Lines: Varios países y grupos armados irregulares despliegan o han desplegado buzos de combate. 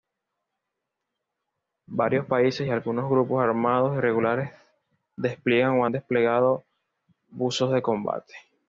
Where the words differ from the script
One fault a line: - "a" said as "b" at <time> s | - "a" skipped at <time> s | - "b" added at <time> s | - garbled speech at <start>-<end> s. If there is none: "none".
- "algunos" added at 2.7 s